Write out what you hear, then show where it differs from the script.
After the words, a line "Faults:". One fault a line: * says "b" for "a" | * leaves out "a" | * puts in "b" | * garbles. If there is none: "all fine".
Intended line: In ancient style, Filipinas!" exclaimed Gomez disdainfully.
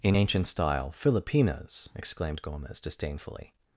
In ancient style, Filipinas!" exclaimed Gomez disdainfully.
Faults:
all fine